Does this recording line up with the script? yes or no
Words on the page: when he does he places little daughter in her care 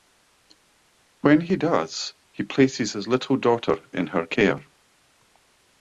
no